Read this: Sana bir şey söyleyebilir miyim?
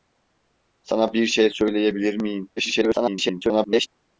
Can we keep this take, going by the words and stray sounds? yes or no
no